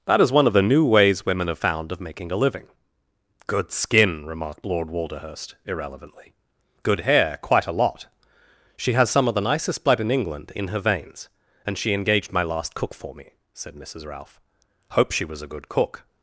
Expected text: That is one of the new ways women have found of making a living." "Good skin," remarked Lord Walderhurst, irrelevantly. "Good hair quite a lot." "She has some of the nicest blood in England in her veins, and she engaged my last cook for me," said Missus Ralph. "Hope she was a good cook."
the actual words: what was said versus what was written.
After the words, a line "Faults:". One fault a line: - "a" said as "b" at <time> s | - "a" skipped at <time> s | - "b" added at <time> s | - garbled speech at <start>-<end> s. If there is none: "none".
That is one of the new ways women have found of making a living." "Good skin," remarked Lord Walderhurst, irrelevantly. "Good hair quite a lot." "She has some of the nicest blood in England in her veins, and she engaged my last cook for me," said Missus Ralph. "Hope she was a good cook."
Faults:
none